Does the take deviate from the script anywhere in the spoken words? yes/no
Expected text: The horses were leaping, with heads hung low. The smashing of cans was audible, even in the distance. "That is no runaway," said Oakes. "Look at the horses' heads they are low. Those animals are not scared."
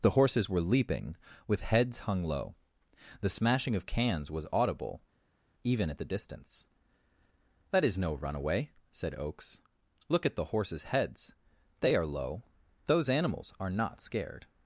yes